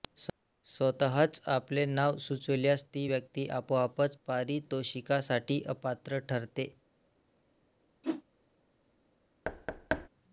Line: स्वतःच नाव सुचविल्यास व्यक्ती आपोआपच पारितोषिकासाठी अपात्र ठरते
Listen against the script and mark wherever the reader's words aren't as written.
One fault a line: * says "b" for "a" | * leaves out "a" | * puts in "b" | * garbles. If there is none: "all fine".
* puts in "आपले"
* puts in "ती"